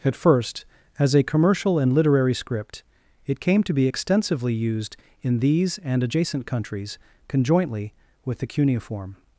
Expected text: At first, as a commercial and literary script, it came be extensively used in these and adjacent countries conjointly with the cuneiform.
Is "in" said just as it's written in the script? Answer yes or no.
yes